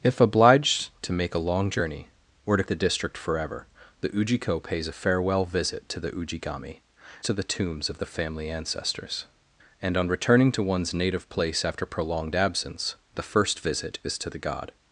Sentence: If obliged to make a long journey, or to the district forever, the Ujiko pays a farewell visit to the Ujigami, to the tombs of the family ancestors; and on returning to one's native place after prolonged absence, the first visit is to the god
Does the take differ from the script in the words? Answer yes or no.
no